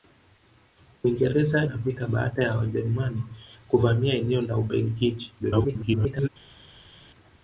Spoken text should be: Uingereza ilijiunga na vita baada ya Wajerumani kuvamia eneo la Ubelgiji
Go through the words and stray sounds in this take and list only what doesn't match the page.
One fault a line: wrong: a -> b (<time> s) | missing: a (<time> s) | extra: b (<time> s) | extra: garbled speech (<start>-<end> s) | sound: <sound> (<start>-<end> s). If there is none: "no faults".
missing: ilijiunga (1.6 s)
extra: garbled speech (5.4-6.3 s)